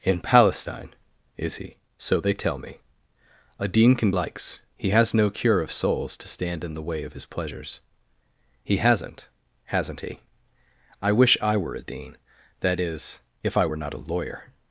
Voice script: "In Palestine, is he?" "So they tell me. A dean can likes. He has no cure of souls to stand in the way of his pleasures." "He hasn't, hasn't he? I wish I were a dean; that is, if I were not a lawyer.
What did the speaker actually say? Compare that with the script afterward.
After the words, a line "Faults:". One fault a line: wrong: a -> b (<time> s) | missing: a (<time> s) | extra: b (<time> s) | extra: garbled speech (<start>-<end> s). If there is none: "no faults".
"In Palestine, is he?" "So they tell me. A dean can likes. He has no cure of souls to stand in the way of his pleasures." "He hasn't, hasn't he? I wish I were a dean; that is, if I were not a lawyer.
Faults:
no faults